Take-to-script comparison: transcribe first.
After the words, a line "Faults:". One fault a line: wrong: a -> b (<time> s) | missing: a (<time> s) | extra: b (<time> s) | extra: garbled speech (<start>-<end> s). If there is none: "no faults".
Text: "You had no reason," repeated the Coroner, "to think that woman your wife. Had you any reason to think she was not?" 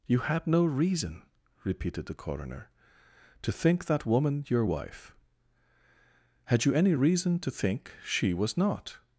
"You had no reason," repeated the Coroner, "to think that woman your wife. Had you any reason to think she was not?"
Faults:
no faults